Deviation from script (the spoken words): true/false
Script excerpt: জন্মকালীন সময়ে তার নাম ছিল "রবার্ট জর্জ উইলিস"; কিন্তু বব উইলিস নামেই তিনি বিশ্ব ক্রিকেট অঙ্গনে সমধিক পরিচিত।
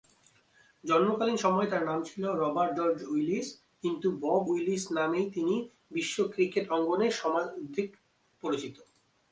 false